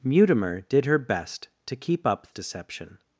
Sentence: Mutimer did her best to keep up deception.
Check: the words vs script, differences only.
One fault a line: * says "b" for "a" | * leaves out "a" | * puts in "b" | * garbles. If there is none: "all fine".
all fine